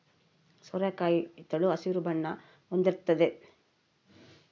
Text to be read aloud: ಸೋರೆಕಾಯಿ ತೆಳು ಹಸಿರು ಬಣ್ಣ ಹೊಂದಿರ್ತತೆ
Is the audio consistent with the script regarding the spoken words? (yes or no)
yes